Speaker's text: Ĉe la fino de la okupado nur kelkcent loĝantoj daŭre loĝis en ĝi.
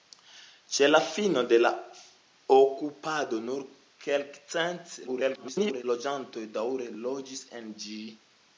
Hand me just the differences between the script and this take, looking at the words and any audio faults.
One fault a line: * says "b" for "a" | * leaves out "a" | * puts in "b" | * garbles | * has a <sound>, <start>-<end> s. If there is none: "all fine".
* garbles